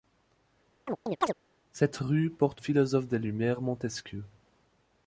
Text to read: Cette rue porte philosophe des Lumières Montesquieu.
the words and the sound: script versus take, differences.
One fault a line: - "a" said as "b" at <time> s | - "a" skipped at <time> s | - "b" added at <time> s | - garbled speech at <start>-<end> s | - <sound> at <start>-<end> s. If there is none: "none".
- chirp at 0.9-1.3 s